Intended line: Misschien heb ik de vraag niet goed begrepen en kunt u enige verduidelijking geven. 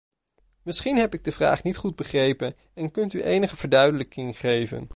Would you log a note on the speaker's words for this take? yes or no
no